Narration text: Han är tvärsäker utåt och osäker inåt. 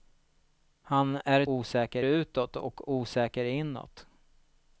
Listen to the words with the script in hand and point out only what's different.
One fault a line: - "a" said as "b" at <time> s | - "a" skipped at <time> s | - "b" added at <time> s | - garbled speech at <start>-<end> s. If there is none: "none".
- "tvärsäker" said as "osäker" at 1.5 s